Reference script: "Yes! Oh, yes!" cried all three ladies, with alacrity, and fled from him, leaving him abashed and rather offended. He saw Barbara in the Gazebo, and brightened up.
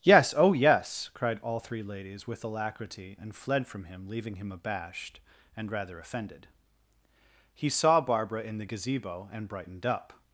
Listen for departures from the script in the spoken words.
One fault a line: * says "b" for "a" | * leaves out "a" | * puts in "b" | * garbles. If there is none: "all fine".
all fine